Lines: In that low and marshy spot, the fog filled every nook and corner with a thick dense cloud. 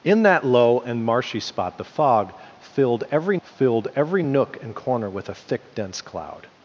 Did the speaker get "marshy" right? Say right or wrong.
right